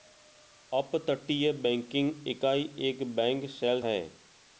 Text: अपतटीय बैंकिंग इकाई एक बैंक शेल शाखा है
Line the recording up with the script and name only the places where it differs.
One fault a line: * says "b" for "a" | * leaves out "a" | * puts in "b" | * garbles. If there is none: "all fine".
* leaves out "शाखा"